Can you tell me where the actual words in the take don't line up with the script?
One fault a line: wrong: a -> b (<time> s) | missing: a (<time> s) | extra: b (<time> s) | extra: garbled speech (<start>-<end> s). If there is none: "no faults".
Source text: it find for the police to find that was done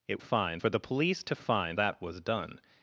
no faults